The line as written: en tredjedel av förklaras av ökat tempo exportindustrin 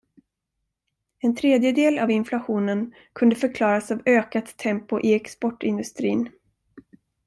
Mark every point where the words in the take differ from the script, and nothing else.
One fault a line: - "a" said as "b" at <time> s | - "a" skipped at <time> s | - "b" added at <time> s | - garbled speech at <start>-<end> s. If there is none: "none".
- "inflationen kunde" added at 2.1 s
- "i" added at 5.0 s